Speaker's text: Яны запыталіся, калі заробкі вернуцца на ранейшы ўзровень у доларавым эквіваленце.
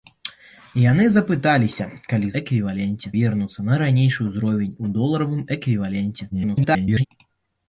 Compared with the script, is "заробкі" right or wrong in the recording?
wrong